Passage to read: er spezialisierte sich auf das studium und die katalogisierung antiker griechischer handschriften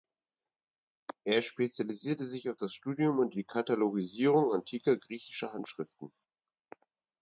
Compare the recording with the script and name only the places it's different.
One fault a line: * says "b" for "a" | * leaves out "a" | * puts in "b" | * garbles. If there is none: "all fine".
all fine